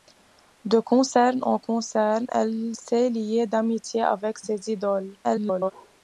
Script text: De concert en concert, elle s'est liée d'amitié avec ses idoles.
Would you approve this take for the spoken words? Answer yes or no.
no